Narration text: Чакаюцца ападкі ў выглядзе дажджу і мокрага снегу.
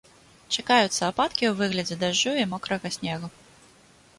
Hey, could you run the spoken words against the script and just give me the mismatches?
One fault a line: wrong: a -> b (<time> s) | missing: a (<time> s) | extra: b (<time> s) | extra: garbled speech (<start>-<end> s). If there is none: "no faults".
no faults